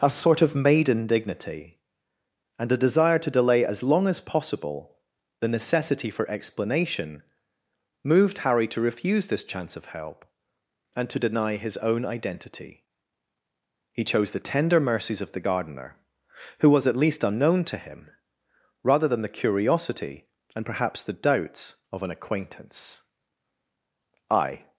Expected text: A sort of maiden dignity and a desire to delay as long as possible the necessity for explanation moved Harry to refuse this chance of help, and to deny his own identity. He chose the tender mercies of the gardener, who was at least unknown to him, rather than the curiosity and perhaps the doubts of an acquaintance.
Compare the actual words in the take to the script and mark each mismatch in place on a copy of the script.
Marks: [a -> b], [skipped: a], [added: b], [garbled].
A sort of maiden dignity and a desire to delay as long as possible the necessity for explanation moved Harry to refuse this chance of help, and to deny his own identity. He chose the tender mercies of the gardener, who was at least unknown to him, rather than the curiosity and perhaps the doubts of an acquaintance. [added: I]